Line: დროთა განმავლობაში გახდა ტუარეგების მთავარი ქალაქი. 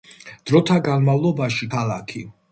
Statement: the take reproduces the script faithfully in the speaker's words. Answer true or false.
false